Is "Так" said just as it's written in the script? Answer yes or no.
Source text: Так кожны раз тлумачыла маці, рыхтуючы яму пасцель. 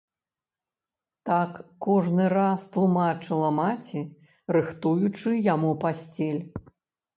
yes